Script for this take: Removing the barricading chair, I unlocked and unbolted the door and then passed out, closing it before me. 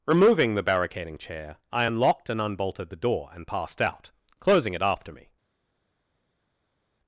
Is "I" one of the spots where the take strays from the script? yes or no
no